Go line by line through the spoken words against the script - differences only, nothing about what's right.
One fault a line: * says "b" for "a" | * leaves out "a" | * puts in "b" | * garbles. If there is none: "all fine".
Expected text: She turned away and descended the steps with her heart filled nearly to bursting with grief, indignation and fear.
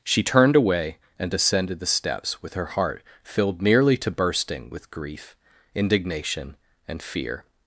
all fine